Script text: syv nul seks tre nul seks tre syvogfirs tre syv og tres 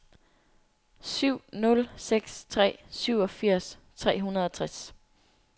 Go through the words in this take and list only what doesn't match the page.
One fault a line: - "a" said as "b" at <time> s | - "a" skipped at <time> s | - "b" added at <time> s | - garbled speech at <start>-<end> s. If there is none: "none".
- "nul seks tre" skipped at 2.8 s
- "syv" said as "hundrede" at 4.2 s